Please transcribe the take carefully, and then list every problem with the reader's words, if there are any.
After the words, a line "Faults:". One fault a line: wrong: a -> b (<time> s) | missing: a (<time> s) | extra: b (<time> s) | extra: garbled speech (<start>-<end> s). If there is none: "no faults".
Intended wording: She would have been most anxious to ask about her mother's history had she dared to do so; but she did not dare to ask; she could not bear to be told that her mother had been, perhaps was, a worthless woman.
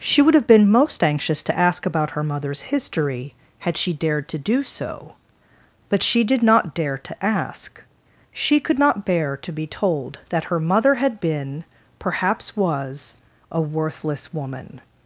She would have been most anxious to ask about her mother's history had she dared to do so; but she did not dare to ask; she could not bear to be told that her mother had been, perhaps was, a worthless woman.
Faults:
no faults